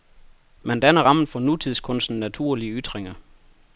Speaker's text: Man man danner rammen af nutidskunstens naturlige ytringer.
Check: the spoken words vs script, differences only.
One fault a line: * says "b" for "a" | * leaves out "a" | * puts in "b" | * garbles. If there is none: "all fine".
* leaves out "man"
* says "for" for "af"